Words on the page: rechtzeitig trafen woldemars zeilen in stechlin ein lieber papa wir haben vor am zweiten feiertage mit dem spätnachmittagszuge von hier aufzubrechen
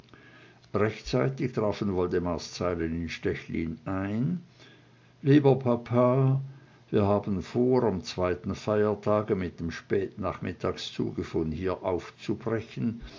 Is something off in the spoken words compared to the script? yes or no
no